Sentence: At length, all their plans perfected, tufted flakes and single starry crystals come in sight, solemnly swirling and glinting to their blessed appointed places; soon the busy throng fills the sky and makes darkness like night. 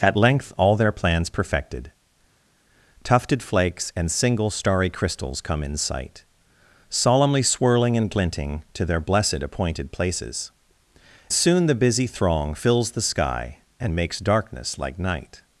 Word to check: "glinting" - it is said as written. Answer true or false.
true